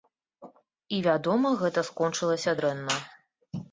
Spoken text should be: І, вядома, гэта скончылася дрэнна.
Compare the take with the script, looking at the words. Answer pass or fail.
pass